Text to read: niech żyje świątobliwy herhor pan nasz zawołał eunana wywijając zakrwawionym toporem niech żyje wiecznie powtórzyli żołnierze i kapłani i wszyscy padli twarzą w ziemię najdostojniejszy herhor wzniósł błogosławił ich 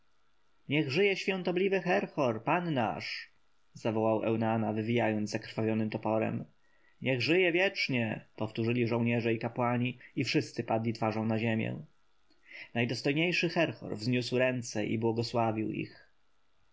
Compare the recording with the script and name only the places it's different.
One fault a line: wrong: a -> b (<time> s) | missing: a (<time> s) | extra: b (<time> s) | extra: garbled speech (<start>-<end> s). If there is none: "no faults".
wrong: w -> na (11.2 s)
extra: ręce i (14.4 s)